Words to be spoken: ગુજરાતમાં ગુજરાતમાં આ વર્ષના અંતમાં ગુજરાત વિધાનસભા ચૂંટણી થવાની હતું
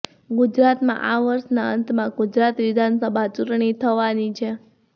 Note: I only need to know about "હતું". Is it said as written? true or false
false